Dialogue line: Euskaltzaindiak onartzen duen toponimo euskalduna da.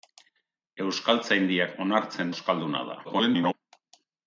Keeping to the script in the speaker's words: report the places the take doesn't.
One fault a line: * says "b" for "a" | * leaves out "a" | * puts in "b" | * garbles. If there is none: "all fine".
* leaves out "duen toponimo"
* garbles